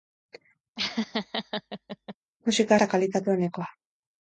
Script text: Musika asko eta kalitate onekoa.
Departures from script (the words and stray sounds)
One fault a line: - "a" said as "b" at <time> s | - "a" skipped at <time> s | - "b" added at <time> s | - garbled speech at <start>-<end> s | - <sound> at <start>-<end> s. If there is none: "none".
- laugh at 0.8-2.2 s
- "asko" skipped at 2.8 s